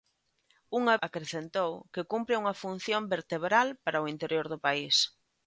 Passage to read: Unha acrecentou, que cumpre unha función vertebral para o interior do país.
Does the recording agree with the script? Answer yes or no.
yes